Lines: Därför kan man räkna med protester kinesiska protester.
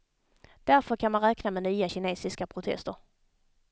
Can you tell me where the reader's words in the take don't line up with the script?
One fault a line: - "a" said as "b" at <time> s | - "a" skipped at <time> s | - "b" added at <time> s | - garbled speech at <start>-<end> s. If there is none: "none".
- "protester" said as "nya" at 1.6 s